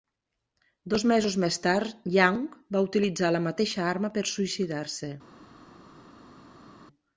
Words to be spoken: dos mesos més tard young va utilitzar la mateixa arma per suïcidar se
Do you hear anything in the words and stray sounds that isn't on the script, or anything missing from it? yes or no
no